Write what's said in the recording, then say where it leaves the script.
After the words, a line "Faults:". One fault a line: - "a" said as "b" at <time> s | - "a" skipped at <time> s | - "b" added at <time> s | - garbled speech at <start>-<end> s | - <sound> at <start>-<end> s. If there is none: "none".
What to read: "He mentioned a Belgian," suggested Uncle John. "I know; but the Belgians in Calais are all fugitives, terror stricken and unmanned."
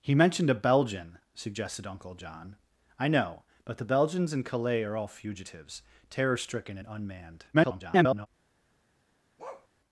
"He mentioned a Belgian," suggested Uncle John. "I know; but the Belgians in Calais are all fugitives, terror stricken and unmanned." [garbled]
Faults:
- garbled speech at 7.5-8.3 s
- bark at 9.4-9.7 s